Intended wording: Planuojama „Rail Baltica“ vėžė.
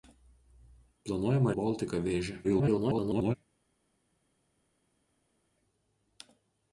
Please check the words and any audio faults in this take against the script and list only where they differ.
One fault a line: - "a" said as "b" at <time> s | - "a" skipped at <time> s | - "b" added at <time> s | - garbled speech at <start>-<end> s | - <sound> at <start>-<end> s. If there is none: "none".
- "Rail" skipped at 1.5 s
- garbled speech at 2.4-3.4 s